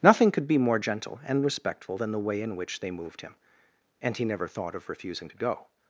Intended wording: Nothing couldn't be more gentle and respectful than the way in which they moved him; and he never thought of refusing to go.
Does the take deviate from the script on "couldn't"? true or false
true